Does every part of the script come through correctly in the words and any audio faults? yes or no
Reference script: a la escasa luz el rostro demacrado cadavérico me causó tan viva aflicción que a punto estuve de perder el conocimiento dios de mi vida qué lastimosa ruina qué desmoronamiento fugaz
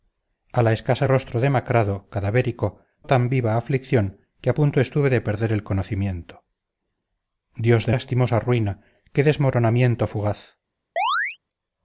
no